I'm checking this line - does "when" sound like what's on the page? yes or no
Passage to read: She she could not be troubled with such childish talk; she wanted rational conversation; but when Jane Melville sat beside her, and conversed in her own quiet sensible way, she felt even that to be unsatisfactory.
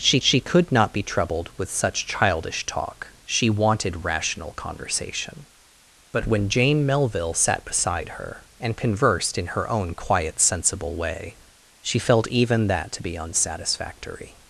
yes